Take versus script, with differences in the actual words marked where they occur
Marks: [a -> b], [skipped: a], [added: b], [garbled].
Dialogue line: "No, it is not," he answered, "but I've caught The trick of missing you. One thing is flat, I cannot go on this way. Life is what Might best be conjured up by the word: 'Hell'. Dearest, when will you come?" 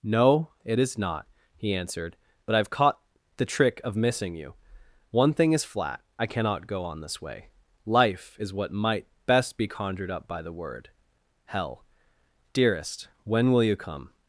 "No, it is not," he answered, "but I've caught The trick of missing you. One thing is flat, I cannot go on this way. Life is what Might best be conjured up by the word: 'Hell'. Dearest, when will you come?"